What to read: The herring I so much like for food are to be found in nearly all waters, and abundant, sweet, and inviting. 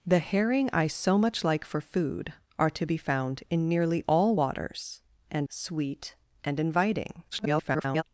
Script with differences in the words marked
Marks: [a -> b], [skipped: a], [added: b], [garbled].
The herring I so much like for food are to be found in nearly all waters, and [skipped: abundant,] sweet, and inviting. [garbled]